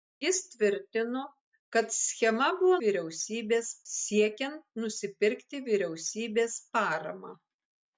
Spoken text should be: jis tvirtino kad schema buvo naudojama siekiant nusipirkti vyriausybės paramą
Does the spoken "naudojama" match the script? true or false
false